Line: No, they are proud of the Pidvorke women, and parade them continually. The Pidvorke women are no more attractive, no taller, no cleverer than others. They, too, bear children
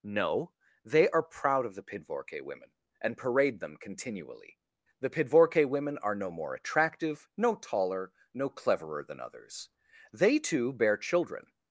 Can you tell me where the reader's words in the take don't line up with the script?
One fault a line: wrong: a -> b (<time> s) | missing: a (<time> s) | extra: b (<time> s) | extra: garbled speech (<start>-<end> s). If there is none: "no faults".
no faults